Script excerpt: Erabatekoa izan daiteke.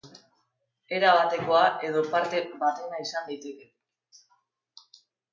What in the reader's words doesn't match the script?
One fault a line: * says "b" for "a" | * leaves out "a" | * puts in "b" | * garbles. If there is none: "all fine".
* puts in "edo parte batena"